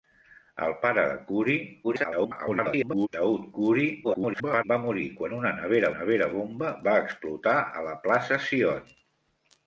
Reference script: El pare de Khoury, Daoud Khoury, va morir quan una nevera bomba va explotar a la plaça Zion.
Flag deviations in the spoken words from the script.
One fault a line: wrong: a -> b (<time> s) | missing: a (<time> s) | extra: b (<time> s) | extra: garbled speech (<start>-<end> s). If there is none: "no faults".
extra: garbled speech (1.8-3.1 s)
extra: garbled speech (4.0-4.6 s)
extra: nevera (5.9 s)